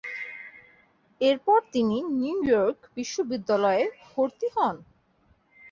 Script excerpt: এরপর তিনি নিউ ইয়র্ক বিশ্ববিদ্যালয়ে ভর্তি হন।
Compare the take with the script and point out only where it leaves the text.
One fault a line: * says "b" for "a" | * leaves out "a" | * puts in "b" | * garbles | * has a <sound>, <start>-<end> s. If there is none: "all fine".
all fine